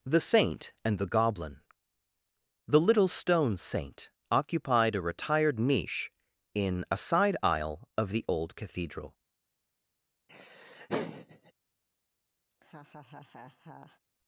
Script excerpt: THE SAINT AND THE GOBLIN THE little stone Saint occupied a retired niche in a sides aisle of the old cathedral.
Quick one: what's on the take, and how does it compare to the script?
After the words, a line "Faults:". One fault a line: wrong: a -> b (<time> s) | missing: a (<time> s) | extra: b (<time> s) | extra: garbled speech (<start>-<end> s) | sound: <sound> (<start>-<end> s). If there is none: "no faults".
THE SAINT AND THE GOBLIN THE little stone Saint occupied a retired niche in a side aisle of the old cathedral.
Faults:
wrong: sides -> side (7.0 s)
sound: laugh (10.3-11.5 s)
sound: laugh (12.5-14.0 s)